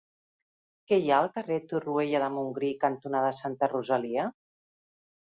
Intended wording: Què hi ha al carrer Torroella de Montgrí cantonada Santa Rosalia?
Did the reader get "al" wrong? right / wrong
right